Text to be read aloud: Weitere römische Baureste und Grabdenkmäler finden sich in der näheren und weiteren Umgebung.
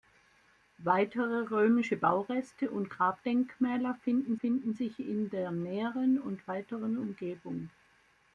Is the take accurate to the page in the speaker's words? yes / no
no